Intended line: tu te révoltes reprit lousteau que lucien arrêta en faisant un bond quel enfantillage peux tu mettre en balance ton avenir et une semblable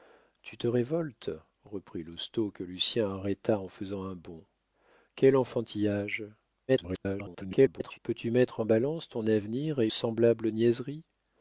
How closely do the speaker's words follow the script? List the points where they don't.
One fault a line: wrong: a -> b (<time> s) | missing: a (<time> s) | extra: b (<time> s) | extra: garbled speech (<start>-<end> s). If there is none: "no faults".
extra: garbled speech (6.7-8.0 s)
missing: une (9.9 s)